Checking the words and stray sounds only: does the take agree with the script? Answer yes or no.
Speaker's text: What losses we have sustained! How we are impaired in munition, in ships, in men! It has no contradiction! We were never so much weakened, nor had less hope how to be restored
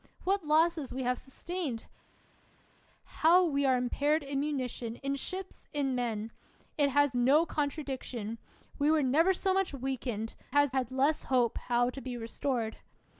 no